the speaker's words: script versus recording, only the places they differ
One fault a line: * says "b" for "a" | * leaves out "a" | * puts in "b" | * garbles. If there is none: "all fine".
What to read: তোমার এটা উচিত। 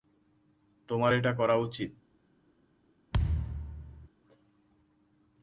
* puts in "করা"